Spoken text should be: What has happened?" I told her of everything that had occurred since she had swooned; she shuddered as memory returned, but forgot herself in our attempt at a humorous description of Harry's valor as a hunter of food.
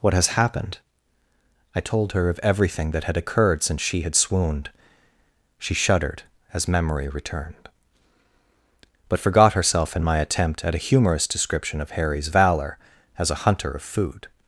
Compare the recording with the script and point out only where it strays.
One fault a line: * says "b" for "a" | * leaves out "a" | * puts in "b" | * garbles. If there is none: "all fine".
* says "my" for "our"